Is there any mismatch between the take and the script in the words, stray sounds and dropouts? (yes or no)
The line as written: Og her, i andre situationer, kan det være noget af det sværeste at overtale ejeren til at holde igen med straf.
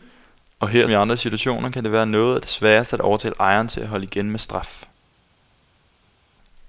no